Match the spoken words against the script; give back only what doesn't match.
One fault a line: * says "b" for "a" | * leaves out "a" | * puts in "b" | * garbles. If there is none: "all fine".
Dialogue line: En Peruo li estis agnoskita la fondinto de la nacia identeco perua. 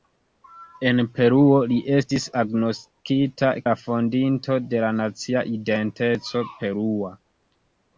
all fine